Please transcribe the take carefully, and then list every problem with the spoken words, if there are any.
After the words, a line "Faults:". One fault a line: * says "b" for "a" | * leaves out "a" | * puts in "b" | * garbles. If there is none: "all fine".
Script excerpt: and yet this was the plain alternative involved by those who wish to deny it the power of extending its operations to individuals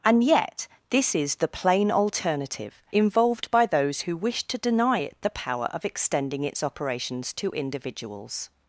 and yet this is the plain alternative involved by those who wish to deny it the power of extending its operations to individuals
Faults:
* says "is" for "was"